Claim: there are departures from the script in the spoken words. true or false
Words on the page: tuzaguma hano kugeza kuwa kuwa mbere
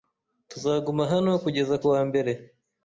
true